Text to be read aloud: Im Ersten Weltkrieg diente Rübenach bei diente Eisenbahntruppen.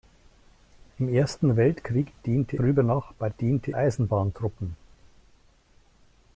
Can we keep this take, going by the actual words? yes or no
yes